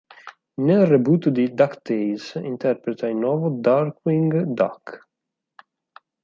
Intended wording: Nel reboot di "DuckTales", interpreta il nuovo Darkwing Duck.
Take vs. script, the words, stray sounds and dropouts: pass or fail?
pass